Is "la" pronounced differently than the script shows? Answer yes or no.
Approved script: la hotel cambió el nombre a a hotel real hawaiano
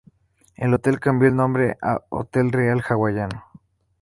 yes